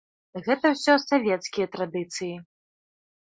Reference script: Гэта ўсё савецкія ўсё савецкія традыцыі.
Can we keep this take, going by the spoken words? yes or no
no